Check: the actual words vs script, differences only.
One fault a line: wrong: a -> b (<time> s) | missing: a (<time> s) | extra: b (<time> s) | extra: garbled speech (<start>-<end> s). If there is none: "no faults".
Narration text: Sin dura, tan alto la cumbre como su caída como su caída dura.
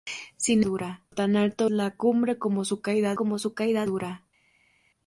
no faults